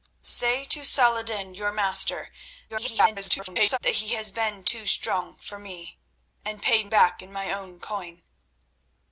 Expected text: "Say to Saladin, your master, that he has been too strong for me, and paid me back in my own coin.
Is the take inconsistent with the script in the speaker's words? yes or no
yes